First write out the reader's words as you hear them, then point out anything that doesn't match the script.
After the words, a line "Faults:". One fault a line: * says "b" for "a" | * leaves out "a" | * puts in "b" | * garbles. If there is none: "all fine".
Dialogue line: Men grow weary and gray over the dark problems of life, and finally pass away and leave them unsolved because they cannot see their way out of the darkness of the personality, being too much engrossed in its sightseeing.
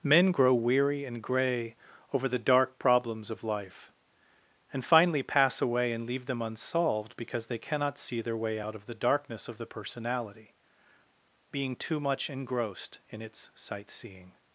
Men grow weary and gray over the dark problems of life, and finally pass away and leave them unsolved because they cannot see their way out of the darkness of the personality, being too much engrossed in its sightseeing.
Faults:
all fine